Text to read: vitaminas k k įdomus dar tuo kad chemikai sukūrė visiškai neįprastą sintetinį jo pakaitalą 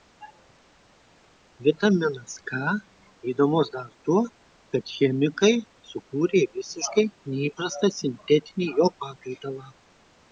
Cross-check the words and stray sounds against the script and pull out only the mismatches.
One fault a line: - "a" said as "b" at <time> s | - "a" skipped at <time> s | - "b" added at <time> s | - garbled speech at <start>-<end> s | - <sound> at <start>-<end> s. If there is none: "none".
- "k" skipped at 2.6 s